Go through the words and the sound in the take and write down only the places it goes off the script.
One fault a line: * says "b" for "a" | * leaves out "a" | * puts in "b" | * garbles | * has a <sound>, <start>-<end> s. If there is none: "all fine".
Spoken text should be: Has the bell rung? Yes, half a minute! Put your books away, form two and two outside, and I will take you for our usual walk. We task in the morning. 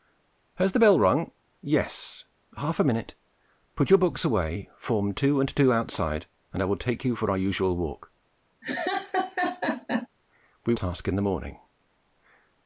* has a laugh, 8.6-10.1 s